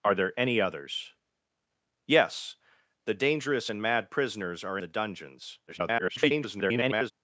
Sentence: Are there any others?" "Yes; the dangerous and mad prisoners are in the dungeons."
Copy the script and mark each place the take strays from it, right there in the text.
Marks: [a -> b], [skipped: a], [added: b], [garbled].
Are there any others?" "Yes; the dangerous and mad prisoners are [skipped: in] the dungeons." [garbled]